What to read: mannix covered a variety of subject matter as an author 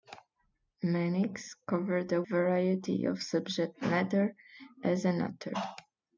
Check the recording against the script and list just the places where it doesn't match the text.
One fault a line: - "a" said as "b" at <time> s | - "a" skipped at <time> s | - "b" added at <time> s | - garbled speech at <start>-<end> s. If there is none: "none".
none